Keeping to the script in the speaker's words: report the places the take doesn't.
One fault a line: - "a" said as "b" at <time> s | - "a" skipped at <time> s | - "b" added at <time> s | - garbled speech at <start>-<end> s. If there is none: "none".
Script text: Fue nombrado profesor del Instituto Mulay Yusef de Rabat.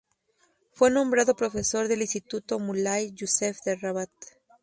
none